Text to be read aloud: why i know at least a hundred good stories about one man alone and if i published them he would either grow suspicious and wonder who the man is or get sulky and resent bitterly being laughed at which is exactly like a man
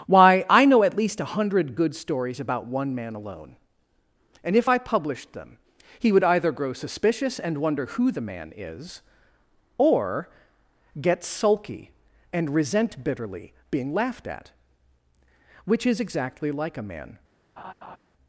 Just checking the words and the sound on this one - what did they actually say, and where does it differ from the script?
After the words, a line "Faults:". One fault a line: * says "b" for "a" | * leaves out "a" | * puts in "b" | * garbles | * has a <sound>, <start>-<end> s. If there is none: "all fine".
why i know at least a hundred good stories about one man alone and if i published them he would either grow suspicious and wonder who the man is or get sulky and resent bitterly being laughed at which is exactly like a man
Faults:
* has a laugh, 17.6-18.0 s